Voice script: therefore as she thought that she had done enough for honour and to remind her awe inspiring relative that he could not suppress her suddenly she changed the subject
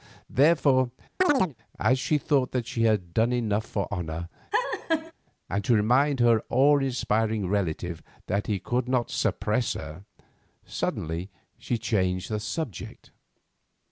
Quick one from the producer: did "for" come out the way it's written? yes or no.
yes